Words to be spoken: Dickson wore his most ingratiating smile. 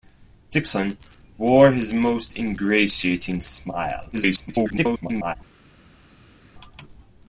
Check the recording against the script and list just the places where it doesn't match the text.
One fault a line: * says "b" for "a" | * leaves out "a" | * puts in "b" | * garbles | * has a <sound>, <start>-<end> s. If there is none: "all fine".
* garbles